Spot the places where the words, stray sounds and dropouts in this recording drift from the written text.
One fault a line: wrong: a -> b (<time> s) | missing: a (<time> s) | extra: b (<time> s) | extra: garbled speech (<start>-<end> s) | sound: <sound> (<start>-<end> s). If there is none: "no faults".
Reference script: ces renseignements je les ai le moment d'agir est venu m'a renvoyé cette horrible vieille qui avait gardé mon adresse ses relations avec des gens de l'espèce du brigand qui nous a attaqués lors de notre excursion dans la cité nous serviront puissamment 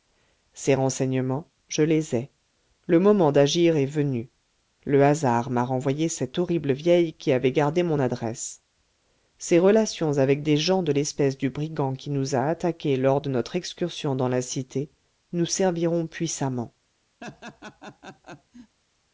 extra: le hasard (4.9 s)
sound: laugh (17.2-18.8 s)